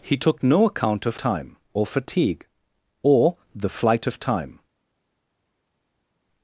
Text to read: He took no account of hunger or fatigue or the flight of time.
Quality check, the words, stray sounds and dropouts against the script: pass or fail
fail